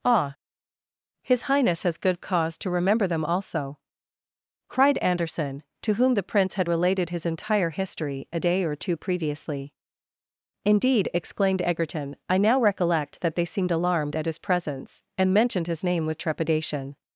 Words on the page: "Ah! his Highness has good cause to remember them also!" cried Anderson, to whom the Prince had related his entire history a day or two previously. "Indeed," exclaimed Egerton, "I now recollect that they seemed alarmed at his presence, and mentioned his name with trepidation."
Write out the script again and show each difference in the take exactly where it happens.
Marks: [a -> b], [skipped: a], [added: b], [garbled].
"Ah! his Highness has good cause to remember them also!" cried Anderson, to whom the Prince had related his entire history a day or two previously. "Indeed," exclaimed Egerton, "I now recollect that they seemed alarmed at his presence, and mentioned his name with trepidation."